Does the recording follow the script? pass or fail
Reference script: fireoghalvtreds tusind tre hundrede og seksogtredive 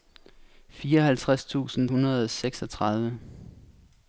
fail